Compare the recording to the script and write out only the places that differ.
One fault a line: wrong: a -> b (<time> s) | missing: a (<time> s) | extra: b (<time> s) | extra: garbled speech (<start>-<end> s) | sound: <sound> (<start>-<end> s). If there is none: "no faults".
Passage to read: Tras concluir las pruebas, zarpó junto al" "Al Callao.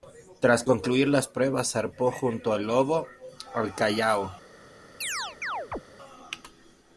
extra: Lobo (2.7 s)
sound: chirp (5.0-5.8 s)